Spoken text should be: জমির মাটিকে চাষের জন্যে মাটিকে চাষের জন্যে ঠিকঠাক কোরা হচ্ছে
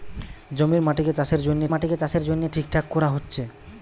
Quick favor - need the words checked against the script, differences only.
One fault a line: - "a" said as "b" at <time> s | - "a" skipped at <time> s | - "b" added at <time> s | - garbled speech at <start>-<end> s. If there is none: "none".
none